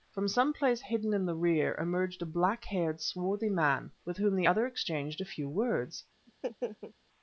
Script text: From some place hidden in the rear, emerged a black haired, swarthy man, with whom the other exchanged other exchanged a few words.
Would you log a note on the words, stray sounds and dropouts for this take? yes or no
yes